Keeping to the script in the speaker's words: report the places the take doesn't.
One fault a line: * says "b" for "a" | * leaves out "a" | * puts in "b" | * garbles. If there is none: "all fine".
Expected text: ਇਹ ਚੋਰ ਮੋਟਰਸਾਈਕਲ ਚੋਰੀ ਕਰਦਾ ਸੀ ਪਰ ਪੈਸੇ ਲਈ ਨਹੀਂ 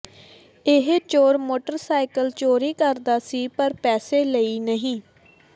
all fine